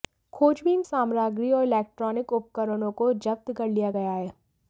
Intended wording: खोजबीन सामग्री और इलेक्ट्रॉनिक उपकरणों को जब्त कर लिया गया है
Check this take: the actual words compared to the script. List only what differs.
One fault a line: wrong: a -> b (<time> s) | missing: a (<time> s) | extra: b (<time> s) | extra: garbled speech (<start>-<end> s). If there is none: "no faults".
no faults